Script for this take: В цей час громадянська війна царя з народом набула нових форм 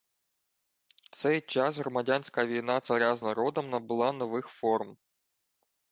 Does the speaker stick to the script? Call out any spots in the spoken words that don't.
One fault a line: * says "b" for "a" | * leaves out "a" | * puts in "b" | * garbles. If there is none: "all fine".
all fine